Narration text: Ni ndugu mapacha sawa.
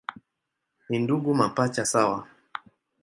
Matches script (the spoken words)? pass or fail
pass